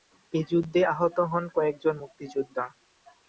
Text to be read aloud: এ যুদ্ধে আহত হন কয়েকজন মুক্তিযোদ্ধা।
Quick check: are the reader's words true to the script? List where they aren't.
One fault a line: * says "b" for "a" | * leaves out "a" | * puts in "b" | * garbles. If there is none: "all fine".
all fine